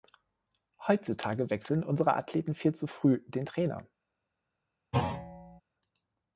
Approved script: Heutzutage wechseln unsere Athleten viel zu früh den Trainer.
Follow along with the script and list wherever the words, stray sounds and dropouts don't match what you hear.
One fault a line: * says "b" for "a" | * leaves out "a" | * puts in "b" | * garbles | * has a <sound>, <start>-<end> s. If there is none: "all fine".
* has a thud, 4.9-5.6 s